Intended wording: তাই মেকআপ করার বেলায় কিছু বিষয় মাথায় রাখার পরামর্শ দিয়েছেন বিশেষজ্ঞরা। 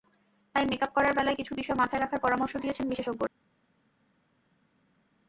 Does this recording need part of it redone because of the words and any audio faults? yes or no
no